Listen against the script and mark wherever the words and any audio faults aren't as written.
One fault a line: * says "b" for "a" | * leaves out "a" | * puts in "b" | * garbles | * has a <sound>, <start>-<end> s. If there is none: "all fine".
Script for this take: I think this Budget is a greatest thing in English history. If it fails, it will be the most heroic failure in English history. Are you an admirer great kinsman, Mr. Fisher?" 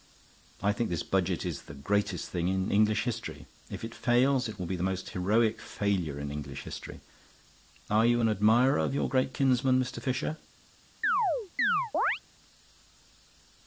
* says "the" for "a"
* puts in "of your"
* has a chirp, 11.0-12.2 s